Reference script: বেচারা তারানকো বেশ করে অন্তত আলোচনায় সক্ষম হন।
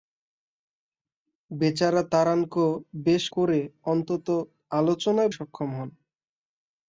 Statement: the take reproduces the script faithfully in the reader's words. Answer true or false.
true